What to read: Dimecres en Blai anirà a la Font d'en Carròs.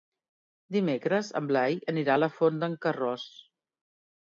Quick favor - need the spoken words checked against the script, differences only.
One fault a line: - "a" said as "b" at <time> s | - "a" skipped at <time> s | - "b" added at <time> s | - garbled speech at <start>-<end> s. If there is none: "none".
none